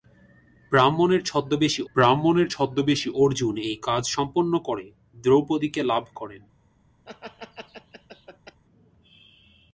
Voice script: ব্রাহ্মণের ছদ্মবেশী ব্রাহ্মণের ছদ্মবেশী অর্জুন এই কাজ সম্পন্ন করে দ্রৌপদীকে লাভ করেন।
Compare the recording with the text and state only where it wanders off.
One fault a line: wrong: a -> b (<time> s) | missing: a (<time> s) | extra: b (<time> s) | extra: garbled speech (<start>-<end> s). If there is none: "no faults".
no faults